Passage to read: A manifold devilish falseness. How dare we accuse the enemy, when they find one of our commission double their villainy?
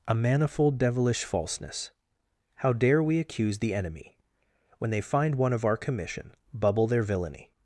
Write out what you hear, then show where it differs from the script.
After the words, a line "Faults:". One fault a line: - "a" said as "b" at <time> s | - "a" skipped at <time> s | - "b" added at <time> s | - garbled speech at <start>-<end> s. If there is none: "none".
A manifold devilish falseness. How dare we accuse the enemy, when they find one of our commission bubble their villainy?
Faults:
- "double" said as "bubble" at 6.5 s